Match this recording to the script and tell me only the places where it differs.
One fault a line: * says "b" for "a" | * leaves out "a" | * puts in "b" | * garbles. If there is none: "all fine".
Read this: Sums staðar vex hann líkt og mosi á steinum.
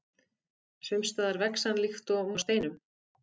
* leaves out "mosi"